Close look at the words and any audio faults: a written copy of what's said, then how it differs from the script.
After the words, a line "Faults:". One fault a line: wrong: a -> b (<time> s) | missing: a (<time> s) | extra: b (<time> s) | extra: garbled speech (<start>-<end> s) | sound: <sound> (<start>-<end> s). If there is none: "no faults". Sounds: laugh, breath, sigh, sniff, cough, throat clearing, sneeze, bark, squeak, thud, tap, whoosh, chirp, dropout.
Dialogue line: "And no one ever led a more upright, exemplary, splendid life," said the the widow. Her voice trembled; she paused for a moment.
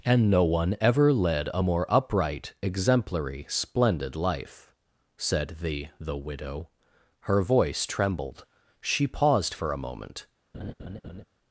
"And no one ever led a more upright, exemplary, splendid life," said the the widow. Her voice trembled; she paused for a moment.
Faults:
sound: laugh (10.5-11.2 s)